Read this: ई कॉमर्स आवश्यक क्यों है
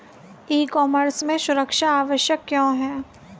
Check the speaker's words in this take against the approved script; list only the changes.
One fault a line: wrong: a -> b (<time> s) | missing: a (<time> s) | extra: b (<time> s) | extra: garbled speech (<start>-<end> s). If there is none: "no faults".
extra: में सुरक्षा (1.2 s)